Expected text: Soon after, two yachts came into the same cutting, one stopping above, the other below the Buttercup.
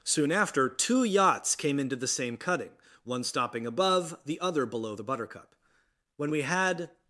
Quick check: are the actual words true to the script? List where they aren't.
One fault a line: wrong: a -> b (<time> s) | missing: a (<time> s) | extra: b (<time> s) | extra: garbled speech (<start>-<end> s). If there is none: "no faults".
extra: When we had (6.2 s)